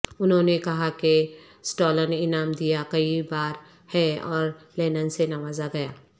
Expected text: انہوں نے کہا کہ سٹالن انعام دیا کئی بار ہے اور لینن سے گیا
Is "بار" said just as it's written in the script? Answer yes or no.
yes